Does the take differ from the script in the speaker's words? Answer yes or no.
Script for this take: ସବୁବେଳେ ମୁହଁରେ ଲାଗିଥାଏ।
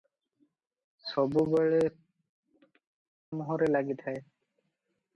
no